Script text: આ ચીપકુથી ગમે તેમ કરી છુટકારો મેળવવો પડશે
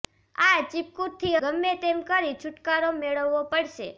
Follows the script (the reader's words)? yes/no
yes